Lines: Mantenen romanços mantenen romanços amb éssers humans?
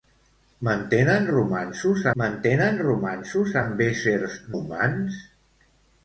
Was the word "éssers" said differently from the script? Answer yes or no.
no